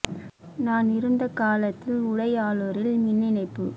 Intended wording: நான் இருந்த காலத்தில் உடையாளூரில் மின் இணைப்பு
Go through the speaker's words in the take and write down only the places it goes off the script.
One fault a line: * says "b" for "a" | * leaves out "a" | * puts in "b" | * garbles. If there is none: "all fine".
all fine